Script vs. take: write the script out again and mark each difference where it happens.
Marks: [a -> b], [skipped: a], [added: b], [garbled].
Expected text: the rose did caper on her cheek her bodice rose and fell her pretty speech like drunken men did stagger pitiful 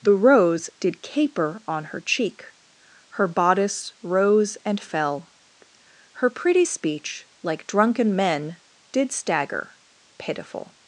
the rose did caper on her cheek her bodice rose and fell her pretty speech like drunken men did stagger pitiful